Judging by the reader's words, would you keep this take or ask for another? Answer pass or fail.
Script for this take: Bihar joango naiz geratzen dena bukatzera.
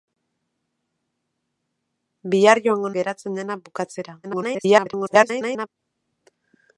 fail